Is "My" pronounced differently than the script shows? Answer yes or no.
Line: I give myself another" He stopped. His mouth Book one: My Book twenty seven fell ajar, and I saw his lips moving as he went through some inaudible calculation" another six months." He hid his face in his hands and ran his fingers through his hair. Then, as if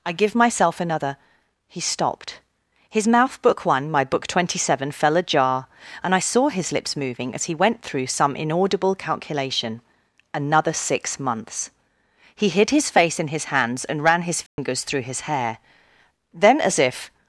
no